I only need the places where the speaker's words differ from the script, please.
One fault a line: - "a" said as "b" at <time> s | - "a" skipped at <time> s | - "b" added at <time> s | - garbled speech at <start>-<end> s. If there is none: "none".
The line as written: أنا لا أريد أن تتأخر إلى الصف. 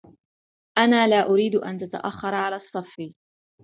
- "إلى" said as "على" at 2.4 s